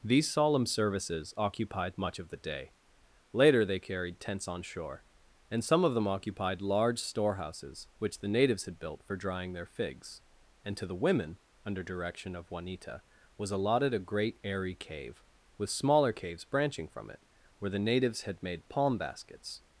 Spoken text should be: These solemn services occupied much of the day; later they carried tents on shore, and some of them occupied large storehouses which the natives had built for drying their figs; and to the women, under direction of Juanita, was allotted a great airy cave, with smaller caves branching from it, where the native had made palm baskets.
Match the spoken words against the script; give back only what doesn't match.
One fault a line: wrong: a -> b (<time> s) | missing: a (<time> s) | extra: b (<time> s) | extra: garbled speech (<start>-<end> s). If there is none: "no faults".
wrong: native -> natives (17.8 s)